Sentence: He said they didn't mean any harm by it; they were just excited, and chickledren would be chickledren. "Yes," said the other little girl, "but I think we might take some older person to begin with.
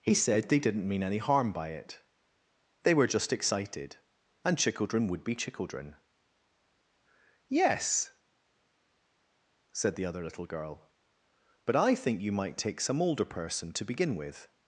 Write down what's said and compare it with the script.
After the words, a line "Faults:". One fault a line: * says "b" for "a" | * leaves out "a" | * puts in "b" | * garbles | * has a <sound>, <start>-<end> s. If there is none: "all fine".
He said they didn't mean any harm by it; they were just excited, and chickledren would be chickledren. "Yes," said the other little girl, "but I think you might take some older person to begin with.
Faults:
* says "you" for "we"